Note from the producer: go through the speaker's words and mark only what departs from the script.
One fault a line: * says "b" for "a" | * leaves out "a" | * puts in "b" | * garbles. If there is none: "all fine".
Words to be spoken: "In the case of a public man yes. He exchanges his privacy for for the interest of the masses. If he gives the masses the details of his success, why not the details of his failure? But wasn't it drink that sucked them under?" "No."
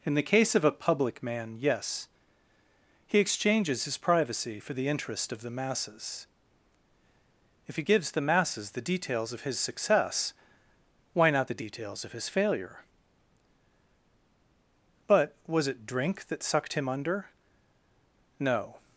* leaves out "for"
* says "was" for "wasn't"
* says "him" for "them"